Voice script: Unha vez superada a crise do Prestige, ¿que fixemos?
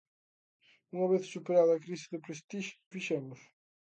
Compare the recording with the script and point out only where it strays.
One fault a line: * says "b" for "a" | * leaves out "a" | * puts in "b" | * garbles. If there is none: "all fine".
* leaves out "que"